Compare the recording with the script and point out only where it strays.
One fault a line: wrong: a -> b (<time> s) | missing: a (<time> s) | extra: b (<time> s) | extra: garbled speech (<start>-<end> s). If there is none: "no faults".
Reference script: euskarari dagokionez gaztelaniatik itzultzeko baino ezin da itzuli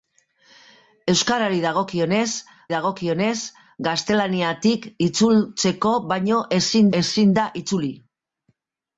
extra: dagokionez (2.7 s)
extra: ezin (7.0 s)